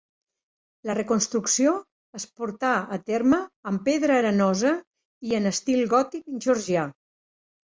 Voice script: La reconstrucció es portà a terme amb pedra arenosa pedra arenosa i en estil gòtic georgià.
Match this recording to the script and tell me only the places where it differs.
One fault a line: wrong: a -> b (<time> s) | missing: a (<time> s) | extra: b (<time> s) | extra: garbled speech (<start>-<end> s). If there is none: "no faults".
missing: pedra arenosa (4.7 s)